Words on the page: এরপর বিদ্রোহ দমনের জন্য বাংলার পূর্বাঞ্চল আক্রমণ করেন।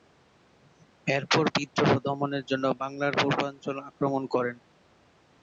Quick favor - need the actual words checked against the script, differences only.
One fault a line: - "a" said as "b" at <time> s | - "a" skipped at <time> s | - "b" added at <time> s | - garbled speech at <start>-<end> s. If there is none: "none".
none